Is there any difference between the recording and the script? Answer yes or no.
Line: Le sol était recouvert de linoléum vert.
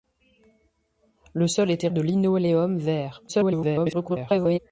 yes